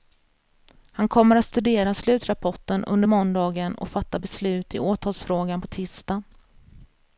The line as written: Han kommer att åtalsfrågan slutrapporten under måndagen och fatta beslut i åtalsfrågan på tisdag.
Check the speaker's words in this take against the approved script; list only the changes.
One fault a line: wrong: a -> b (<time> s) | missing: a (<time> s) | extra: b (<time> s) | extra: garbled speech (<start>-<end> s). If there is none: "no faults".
wrong: åtalsfrågan -> studera (1.4 s)